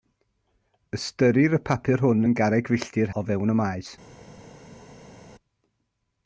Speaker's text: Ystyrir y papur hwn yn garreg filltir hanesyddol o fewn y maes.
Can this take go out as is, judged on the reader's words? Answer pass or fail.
fail